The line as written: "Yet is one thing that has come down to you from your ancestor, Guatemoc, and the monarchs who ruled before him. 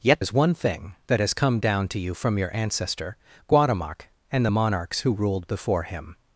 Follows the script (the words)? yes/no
yes